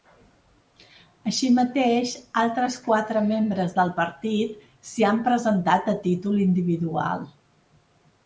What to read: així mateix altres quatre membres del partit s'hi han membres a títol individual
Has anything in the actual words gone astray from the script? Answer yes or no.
yes